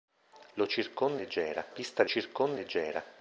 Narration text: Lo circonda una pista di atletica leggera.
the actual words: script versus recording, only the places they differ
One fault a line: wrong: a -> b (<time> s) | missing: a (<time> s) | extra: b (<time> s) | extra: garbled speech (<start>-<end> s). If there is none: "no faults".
wrong: una -> leggera (1.2 s)
wrong: atletica -> circonda (2.0 s)